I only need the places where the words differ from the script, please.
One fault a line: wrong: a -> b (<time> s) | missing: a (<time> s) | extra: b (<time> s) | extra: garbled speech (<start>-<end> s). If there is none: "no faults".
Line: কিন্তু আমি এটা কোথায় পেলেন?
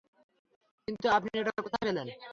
wrong: আমি -> আপনি (1.2 s)